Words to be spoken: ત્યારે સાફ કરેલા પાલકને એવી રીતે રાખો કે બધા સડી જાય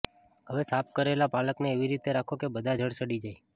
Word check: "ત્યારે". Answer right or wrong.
wrong